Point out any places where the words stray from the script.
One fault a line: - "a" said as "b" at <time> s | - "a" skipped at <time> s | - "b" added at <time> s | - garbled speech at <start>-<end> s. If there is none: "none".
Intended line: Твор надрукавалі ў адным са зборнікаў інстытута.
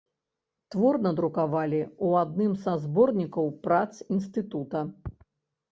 - "прац" added at 3.7 s